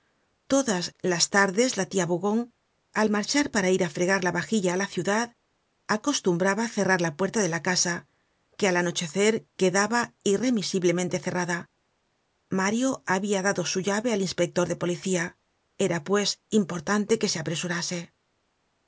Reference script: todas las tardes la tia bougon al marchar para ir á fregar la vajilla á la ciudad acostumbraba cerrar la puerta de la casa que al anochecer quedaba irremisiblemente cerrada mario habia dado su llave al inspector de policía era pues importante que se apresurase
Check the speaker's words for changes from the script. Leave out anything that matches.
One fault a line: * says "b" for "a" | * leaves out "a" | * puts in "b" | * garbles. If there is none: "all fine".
all fine